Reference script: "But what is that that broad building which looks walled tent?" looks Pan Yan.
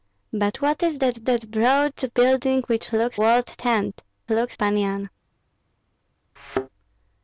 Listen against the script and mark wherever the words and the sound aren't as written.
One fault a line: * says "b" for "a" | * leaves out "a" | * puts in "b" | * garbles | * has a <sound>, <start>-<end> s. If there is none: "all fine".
* has a thud, 6.4-6.7 s